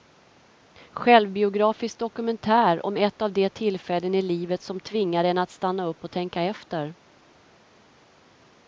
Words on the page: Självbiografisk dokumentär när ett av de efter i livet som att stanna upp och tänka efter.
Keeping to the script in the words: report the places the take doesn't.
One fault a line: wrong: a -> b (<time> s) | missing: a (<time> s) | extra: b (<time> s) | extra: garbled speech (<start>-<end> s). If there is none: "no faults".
wrong: när -> om (2.8 s)
wrong: efter -> tillfällen (3.5 s)
extra: tvingar en (4.8 s)